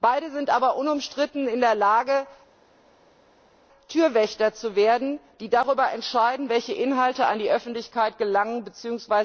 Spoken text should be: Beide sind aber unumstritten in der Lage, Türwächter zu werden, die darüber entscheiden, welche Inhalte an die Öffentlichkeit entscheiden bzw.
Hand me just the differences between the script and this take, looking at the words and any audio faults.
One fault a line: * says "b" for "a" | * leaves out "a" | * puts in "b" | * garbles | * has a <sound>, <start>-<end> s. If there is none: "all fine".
* says "gelangen" for "entscheiden"